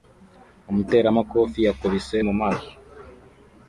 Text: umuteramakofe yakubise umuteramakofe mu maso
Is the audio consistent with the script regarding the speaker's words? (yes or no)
no